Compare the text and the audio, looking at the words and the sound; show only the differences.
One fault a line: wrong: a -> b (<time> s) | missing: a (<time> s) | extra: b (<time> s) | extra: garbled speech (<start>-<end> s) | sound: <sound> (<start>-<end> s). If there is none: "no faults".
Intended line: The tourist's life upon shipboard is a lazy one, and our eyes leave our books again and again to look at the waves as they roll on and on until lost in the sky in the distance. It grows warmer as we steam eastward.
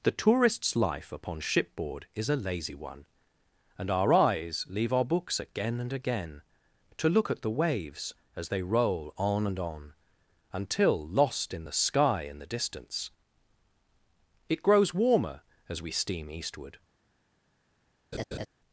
sound: laugh (18.1-18.5 s)